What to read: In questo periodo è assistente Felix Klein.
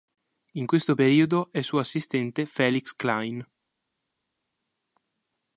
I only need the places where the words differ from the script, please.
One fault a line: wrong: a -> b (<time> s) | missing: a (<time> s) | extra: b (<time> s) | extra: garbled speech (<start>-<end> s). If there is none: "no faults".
extra: suo (1.6 s)